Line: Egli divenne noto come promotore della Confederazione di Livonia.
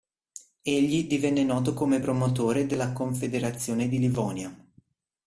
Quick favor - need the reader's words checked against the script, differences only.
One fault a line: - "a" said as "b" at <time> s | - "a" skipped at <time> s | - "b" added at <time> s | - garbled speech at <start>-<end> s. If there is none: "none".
none